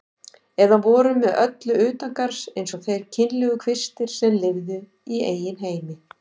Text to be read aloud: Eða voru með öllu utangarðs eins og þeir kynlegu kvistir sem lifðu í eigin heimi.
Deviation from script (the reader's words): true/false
false